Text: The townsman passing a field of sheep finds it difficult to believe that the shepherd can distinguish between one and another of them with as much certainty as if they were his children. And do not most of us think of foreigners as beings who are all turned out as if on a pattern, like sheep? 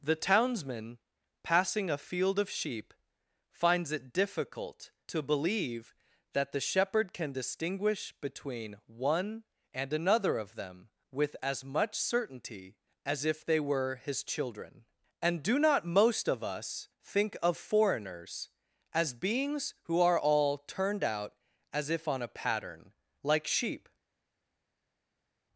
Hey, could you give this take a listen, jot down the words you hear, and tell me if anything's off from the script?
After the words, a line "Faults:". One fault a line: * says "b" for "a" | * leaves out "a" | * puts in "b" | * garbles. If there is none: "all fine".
The townsman passing a field of sheep finds it difficult to believe that the shepherd can distinguish between one and another of them with as much certainty as if they were his children. And do not most of us think of foreigners as beings who are all turned out as if on a pattern, like sheep?
Faults:
all fine